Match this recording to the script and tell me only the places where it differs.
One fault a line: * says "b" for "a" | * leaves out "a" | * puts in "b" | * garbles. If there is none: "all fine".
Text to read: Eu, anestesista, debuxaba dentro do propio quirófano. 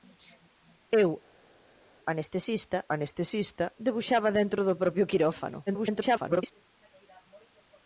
* puts in "anestesista"
* garbles